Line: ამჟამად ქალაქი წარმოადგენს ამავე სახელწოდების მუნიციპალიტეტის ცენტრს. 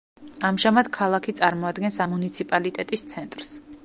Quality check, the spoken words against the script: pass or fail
fail